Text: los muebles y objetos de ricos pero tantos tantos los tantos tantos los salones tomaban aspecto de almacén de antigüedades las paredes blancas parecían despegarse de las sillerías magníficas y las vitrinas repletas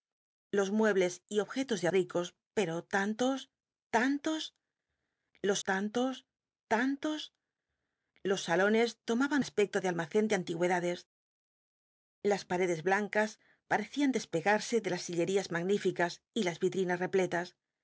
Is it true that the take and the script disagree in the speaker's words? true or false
false